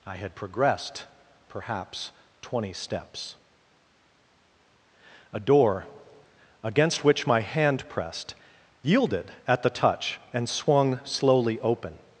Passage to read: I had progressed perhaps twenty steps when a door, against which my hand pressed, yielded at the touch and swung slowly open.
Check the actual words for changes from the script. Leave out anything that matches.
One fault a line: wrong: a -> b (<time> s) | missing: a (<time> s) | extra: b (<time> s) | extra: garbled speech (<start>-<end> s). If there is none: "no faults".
missing: when (3.4 s)